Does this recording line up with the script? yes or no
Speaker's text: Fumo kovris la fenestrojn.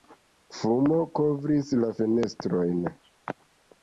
yes